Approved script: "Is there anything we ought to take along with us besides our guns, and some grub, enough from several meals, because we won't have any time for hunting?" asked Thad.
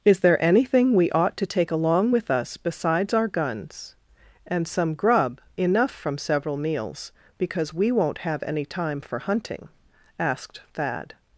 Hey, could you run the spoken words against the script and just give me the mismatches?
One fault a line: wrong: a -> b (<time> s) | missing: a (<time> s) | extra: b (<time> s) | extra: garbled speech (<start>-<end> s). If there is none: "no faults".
no faults